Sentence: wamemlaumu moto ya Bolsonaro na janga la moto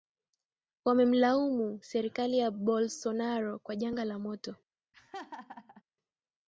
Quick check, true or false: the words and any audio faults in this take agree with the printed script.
false